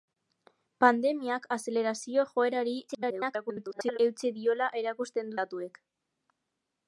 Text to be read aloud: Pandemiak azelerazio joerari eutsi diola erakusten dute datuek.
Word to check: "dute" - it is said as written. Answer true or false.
false